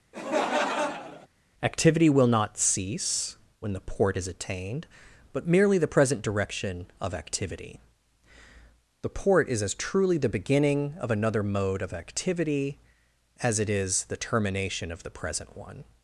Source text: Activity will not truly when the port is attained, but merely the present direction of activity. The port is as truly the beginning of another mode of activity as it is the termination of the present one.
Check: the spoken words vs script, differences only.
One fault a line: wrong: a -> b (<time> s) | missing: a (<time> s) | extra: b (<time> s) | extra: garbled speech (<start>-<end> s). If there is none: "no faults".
wrong: truly -> cease (2.6 s)